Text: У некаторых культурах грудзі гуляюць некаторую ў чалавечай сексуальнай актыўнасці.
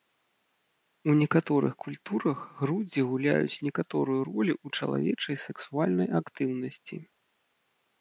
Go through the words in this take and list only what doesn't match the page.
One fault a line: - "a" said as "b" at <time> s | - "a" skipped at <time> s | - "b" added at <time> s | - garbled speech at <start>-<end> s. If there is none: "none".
- "ролю" added at 4.3 s